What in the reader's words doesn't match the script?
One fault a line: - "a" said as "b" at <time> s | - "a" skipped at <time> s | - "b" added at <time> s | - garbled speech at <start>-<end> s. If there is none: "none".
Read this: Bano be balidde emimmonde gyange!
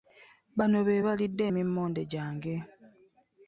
none